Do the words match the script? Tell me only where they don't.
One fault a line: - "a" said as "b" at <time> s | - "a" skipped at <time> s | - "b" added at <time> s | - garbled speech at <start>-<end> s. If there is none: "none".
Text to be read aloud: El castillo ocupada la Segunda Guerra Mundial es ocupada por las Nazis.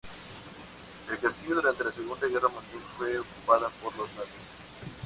- "ocupada" said as "durante" at 1.6 s
- "es" said as "fue" at 3.0 s
- "las" said as "los" at 4.0 s